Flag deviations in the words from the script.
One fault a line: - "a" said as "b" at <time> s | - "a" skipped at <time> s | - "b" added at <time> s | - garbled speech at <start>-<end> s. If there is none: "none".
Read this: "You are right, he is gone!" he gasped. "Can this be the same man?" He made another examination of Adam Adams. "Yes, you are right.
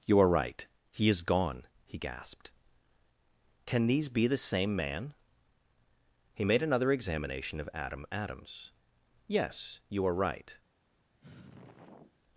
- "this" said as "these" at 3.9 s